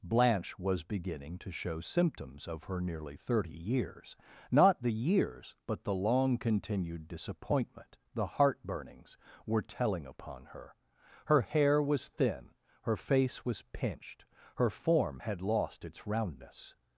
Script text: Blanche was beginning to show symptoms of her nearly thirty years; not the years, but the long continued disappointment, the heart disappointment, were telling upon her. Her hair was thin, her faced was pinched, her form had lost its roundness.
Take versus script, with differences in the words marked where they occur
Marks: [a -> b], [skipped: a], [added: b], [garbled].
Blanche was beginning to show symptoms of her nearly thirty years; not the years, but the long continued disappointment, the heart [disappointment, -> burnings] were telling upon her. Her hair was thin, her [faced -> face] was pinched, her form had lost its roundness.